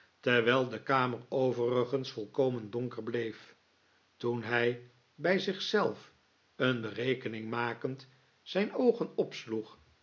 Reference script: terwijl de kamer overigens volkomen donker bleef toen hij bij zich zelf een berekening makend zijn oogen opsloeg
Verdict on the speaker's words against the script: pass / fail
pass